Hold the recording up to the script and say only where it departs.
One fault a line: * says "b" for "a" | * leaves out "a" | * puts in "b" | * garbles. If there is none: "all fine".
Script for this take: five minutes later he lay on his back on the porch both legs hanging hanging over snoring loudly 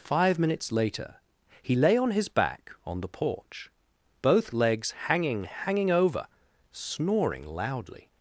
all fine